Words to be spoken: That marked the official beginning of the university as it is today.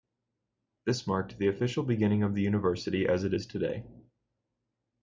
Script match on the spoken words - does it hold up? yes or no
no